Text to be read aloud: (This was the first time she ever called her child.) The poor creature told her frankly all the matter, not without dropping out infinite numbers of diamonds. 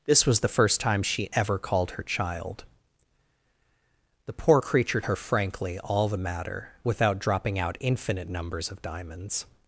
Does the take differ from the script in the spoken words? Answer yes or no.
yes